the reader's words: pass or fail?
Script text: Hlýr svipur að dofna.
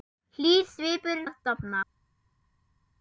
pass